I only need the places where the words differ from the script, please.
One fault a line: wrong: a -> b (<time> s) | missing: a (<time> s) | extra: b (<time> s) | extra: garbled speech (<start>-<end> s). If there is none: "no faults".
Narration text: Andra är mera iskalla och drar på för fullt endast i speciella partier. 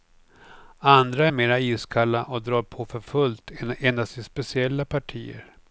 no faults